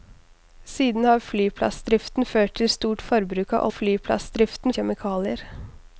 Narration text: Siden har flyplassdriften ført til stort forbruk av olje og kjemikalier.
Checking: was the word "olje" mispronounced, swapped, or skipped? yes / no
yes